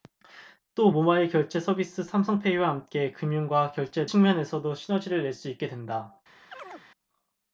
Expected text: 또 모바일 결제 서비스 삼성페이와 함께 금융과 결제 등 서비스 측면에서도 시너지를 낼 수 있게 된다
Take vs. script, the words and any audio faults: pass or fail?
fail